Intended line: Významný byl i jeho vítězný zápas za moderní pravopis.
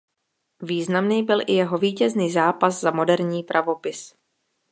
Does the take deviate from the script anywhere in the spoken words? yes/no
no